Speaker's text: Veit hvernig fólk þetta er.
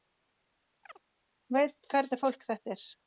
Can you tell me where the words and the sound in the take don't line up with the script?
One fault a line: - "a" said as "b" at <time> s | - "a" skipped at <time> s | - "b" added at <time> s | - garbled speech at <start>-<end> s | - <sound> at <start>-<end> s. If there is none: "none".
- chirp at 0.8-1.0 s